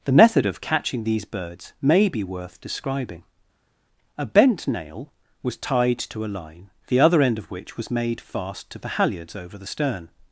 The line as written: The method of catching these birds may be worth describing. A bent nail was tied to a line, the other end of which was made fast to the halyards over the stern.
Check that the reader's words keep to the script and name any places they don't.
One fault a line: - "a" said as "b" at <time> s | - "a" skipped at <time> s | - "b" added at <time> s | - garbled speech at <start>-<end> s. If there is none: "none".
none